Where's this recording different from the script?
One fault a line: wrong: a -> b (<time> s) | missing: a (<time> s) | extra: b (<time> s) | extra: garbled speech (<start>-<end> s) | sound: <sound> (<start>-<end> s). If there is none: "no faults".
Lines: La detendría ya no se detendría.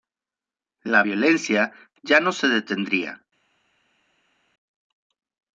wrong: detendría -> violencia (1.0 s)